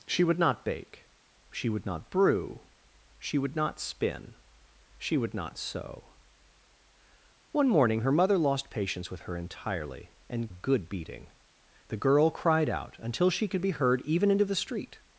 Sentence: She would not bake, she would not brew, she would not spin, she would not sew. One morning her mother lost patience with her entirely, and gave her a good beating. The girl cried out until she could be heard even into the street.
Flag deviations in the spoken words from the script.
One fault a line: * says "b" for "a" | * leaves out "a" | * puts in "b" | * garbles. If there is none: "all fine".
* leaves out "gave her a"